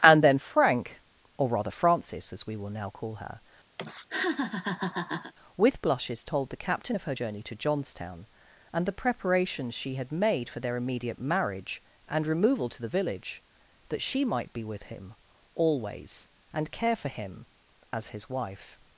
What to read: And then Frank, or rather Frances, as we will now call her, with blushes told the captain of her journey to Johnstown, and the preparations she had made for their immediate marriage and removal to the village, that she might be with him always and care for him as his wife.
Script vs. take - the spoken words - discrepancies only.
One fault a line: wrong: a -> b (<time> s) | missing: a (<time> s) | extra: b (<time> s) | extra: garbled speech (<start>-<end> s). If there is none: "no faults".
no faults